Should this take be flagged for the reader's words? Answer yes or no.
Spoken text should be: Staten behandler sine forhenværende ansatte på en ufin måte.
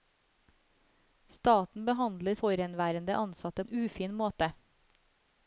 yes